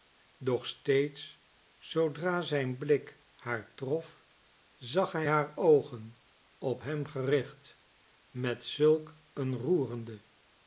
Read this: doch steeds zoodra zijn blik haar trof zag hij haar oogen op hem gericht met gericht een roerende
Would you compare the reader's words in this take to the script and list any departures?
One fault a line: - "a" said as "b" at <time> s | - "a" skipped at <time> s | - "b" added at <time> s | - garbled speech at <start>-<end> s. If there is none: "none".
- "gericht" said as "zulk" at 8.6 s